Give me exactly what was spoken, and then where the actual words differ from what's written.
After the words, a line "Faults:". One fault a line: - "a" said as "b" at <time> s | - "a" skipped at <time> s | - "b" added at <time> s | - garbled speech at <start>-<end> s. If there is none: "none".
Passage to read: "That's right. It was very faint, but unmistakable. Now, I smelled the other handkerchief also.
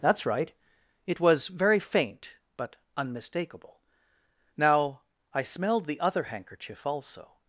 "That's right. It was very faint, but unmistakable. Now, I smelled the other handkerchief also.
Faults:
none